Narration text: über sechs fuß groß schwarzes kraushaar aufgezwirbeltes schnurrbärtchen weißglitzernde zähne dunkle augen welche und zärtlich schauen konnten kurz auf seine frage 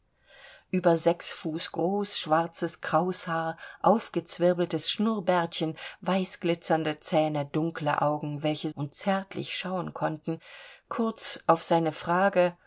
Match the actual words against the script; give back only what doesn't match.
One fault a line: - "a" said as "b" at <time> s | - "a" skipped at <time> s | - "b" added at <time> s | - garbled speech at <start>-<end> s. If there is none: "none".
none